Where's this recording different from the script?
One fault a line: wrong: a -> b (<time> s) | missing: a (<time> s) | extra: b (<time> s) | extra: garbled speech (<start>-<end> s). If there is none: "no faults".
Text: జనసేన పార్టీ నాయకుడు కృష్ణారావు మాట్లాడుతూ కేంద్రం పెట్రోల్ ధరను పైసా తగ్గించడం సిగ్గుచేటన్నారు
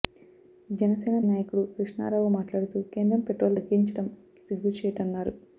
missing: పార్టీ (1.2 s)
missing: ధరను పైసా (3.6 s)